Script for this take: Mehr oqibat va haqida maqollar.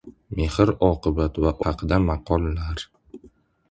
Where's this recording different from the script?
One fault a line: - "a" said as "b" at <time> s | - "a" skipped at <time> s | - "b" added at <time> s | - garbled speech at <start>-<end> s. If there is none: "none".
none